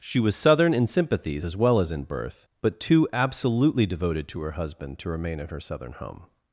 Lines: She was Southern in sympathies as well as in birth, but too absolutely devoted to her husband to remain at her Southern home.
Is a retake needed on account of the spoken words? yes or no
no